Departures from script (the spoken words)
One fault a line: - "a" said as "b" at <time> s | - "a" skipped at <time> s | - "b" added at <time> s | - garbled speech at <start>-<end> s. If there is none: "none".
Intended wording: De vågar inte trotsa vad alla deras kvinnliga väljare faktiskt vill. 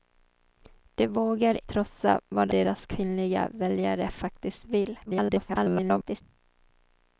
- "inte" skipped at 1.7 s
- "alla" skipped at 2.5 s
- garbled speech at 5.1-6.2 s